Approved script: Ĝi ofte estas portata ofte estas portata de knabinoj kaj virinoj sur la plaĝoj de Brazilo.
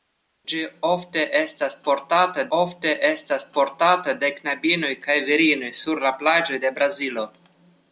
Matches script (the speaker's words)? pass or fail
pass